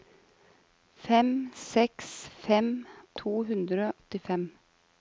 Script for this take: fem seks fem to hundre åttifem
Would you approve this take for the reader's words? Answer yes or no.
yes